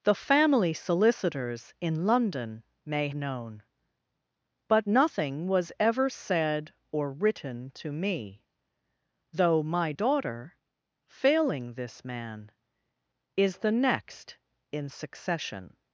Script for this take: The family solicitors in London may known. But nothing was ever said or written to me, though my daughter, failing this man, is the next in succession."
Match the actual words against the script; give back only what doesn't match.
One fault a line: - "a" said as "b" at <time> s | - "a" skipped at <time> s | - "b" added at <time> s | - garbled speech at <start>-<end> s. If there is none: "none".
none